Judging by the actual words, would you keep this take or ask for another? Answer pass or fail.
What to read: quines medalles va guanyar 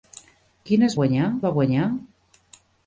fail